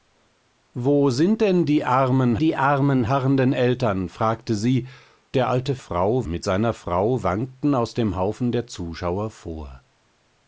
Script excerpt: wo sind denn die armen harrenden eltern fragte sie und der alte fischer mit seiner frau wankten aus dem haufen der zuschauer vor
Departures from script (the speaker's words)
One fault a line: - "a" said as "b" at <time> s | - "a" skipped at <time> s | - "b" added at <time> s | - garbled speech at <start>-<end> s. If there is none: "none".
- "die armen" added at 2.4 s
- "und" skipped at 4.9 s
- "fischer" said as "frau" at 5.8 s